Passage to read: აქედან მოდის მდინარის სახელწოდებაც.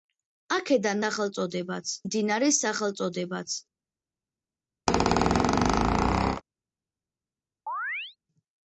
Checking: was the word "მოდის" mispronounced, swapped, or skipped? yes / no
yes